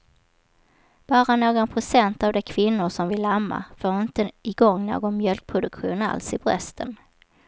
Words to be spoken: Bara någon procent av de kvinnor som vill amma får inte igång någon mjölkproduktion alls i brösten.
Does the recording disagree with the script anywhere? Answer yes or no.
no